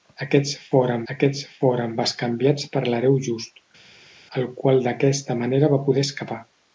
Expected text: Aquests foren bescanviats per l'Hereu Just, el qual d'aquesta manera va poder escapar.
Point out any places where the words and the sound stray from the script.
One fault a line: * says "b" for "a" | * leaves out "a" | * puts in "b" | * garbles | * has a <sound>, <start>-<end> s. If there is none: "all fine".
* puts in "aquests foren"